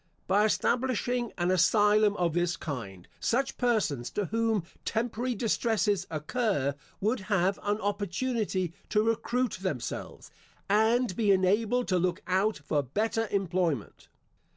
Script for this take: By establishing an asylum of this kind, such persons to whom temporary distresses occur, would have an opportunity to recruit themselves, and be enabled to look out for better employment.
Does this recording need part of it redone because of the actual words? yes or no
no